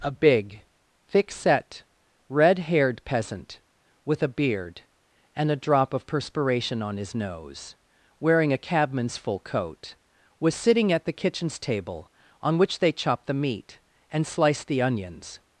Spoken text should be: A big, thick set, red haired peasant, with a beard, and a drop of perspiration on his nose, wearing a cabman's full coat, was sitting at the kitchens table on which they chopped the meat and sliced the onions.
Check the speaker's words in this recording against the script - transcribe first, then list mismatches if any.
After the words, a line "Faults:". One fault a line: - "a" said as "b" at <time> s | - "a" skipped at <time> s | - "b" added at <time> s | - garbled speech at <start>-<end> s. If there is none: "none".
A big, thick set, red haired peasant, with a beard, and a drop of perspiration on his nose, wearing a cabman's full coat, was sitting at the kitchens table on which they chopped the meat and sliced the onions.
Faults:
none